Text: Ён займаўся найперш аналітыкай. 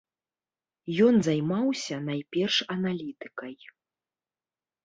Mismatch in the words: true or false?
false